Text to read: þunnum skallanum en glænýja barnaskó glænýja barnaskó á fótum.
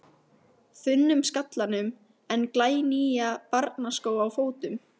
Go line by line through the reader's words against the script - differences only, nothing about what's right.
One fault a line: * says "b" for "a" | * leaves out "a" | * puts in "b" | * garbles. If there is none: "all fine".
* leaves out "glænýja barnaskó"